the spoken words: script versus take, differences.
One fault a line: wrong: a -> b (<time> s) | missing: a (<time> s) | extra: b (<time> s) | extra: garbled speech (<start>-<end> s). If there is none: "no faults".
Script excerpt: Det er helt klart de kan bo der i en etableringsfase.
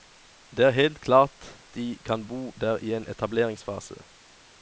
no faults